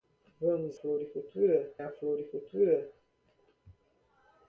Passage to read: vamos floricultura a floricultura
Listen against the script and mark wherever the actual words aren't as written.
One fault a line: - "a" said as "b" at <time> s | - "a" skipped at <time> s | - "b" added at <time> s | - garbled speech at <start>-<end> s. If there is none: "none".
none